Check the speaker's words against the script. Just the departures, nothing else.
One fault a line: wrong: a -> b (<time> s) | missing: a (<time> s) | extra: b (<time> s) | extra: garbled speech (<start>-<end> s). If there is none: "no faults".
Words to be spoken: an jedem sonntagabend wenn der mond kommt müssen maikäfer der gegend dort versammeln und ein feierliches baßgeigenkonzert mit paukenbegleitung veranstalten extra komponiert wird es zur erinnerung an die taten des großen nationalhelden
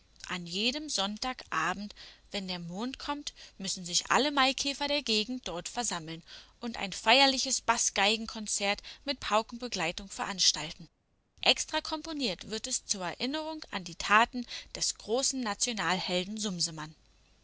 extra: sich alle (3.8 s)